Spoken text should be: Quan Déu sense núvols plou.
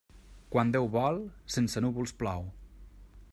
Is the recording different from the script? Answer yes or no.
yes